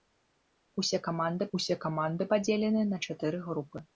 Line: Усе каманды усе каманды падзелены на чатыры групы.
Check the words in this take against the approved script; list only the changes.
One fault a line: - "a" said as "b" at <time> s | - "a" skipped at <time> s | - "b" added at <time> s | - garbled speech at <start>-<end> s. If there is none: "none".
none